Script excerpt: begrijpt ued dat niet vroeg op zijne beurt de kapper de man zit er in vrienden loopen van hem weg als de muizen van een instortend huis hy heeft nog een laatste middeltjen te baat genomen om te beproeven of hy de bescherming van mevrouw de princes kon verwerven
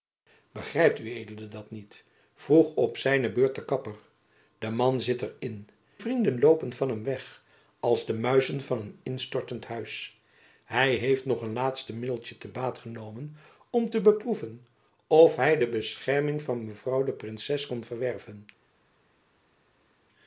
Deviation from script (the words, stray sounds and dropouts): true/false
false